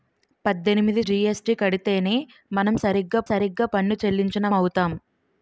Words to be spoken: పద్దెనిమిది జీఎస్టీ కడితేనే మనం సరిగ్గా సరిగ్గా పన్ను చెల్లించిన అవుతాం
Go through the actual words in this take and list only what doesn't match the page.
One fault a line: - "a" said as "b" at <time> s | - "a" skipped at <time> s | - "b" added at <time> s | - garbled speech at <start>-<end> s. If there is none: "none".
none